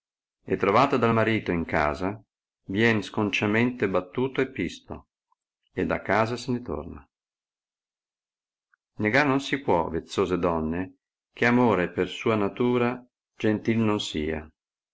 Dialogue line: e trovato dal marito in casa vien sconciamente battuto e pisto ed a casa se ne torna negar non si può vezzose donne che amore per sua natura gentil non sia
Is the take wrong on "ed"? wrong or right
right